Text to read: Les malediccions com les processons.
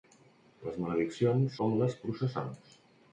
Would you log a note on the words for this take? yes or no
no